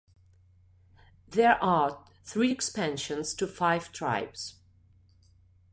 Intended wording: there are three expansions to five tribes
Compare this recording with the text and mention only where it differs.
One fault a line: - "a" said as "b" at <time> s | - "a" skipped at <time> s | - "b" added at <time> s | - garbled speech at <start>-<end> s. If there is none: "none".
none